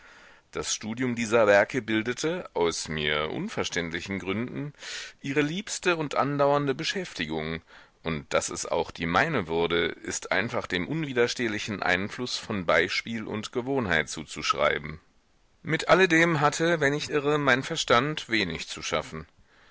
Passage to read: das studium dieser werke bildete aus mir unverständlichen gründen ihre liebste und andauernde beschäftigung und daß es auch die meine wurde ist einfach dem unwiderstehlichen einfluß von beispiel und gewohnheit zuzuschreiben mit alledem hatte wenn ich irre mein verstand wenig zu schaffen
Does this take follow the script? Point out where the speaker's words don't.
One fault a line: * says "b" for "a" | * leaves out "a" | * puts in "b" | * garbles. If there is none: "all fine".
all fine